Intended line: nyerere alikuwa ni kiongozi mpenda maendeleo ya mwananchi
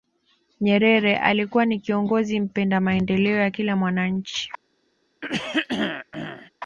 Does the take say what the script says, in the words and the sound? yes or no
no